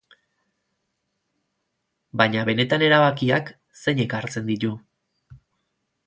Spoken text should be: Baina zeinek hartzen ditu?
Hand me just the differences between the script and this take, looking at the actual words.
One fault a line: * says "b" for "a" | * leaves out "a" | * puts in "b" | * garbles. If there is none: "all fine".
* puts in "benetan erabakiak"